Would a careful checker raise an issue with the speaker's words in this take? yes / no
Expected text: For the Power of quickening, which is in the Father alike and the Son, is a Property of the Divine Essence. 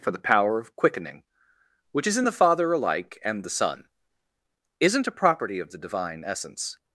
yes